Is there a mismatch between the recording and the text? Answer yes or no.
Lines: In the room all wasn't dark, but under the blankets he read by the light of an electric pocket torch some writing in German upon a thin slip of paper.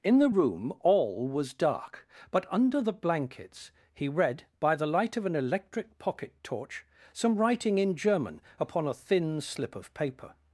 yes